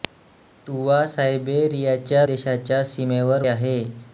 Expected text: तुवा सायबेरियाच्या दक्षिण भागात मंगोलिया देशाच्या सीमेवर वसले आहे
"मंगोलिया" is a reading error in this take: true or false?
true